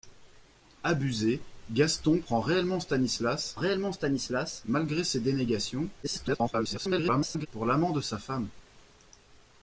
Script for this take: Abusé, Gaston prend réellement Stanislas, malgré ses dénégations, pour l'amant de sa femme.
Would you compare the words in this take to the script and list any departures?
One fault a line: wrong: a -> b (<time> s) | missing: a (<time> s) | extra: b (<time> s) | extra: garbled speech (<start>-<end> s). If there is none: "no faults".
extra: réellement Stanislas (3.5 s)
extra: garbled speech (6.0-7.5 s)